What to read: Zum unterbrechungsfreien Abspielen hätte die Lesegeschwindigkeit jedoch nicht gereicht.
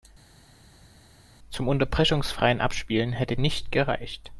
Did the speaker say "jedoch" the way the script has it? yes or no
no